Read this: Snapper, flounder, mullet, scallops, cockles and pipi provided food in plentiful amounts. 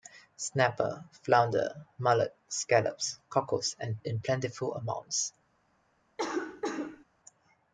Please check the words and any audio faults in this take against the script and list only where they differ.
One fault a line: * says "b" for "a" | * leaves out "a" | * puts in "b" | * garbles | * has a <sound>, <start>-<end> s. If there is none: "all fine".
* leaves out "pipi provided food"
* has a cough, 6.2-7.0 s